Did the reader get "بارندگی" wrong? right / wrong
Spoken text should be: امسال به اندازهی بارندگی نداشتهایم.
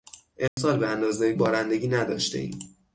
right